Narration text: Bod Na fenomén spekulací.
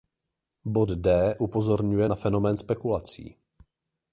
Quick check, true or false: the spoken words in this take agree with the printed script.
false